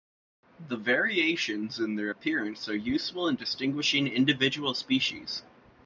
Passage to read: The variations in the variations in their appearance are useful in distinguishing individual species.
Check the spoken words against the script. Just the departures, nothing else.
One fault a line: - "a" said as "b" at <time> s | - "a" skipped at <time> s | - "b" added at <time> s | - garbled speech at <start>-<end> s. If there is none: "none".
- "the variations in" skipped at 1.9 s